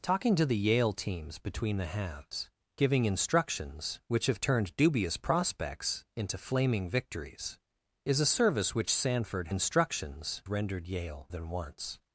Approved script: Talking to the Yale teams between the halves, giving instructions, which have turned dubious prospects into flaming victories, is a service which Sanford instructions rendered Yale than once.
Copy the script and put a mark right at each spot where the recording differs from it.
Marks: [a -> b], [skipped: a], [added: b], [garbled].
Talking to the Yale teams between the halves, giving instructions, which have turned dubious prospects into flaming victories, is a service which Sanford instructions rendered Yale than once.